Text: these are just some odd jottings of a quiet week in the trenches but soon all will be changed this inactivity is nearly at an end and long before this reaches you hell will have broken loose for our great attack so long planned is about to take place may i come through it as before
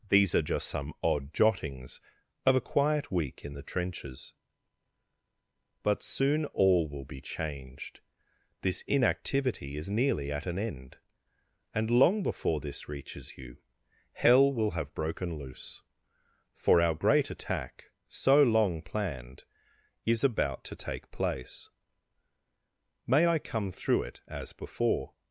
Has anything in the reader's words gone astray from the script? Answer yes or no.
no